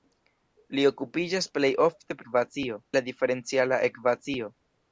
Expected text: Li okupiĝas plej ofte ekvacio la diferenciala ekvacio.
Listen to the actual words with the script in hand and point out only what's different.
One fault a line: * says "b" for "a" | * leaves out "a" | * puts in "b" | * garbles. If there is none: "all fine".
all fine